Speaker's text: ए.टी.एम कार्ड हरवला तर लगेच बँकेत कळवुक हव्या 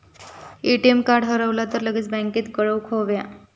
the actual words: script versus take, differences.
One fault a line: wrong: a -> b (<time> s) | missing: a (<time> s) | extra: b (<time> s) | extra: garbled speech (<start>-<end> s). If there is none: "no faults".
no faults